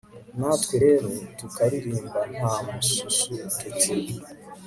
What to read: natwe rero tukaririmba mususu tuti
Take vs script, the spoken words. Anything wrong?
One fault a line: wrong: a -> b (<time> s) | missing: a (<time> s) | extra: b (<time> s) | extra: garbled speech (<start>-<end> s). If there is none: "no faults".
extra: nta (2.3 s)